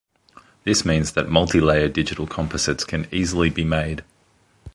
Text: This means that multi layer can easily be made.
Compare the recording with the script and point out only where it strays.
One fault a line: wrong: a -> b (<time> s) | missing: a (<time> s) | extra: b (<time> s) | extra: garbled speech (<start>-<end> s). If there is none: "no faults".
extra: digital composites (1.9 s)